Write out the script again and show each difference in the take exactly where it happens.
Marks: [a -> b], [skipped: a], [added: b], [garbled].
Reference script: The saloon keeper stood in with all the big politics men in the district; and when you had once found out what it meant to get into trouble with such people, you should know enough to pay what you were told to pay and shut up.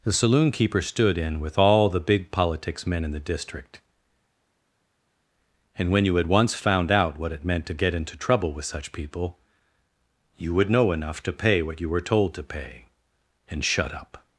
The saloon keeper stood in with all the big politics men in the district; and when you had once found out what it meant to get into trouble with such people, you [should -> would] know enough to pay what you were told to pay and shut up.